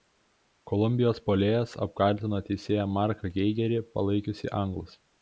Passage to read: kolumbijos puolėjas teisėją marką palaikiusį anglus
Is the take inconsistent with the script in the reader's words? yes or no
yes